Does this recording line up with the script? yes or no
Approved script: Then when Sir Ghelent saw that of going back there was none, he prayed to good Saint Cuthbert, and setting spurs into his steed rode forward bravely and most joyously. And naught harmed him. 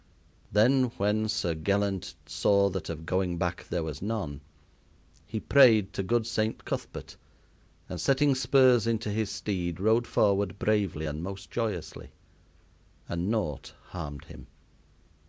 yes